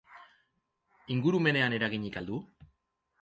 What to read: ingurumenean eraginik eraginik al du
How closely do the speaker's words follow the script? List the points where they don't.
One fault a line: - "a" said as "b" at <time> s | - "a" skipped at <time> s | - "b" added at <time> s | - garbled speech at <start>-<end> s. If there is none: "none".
- "eraginik" skipped at 2.2 s